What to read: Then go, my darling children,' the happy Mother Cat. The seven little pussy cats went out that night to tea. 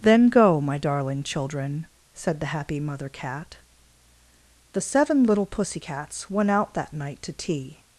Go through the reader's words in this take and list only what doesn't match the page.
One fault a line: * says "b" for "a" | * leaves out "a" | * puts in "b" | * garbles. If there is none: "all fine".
* puts in "said"